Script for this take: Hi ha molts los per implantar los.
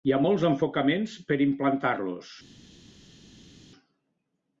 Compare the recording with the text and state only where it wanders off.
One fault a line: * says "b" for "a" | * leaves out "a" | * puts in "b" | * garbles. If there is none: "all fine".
* says "enfocaments" for "los"